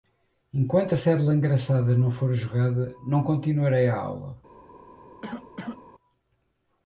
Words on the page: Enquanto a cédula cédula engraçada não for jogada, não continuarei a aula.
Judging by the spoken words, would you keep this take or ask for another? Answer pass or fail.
fail